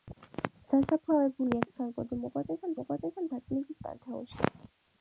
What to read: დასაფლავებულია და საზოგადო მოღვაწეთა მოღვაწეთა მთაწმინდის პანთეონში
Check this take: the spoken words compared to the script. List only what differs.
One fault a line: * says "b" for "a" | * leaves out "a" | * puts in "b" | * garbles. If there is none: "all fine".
all fine